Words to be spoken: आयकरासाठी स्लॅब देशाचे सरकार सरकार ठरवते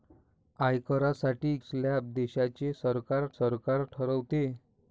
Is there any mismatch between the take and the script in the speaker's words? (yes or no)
no